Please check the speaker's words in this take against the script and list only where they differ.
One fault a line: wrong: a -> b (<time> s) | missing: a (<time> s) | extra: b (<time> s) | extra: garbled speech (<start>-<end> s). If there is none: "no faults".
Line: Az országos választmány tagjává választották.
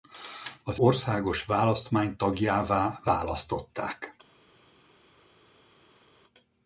no faults